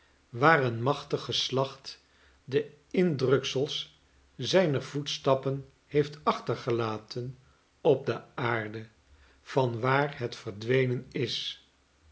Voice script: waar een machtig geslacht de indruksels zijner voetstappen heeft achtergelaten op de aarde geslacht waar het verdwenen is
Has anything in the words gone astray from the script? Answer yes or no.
yes